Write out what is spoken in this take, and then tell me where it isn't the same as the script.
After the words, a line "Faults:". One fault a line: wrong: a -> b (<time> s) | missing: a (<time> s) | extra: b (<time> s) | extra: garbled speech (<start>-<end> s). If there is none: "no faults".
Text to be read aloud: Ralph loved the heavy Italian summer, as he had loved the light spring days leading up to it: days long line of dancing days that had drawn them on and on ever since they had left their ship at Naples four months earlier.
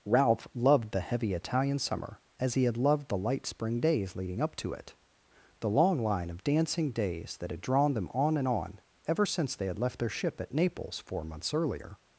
Ralph loved the heavy Italian summer, as he had loved the light spring days leading up to it: the long line of dancing days that had drawn them on and on ever since they had left their ship at Naples four months earlier.
Faults:
wrong: days -> the (5.6 s)